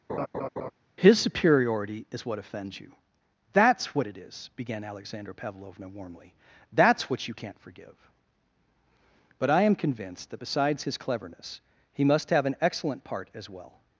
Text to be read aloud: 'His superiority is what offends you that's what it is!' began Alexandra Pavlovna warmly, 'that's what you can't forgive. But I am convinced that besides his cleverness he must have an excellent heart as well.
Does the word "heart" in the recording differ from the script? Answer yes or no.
yes